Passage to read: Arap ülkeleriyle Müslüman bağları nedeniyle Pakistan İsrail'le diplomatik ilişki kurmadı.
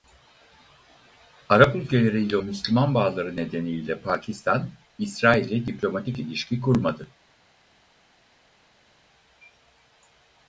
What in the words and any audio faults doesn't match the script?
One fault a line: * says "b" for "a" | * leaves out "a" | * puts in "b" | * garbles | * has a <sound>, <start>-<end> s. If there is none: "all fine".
all fine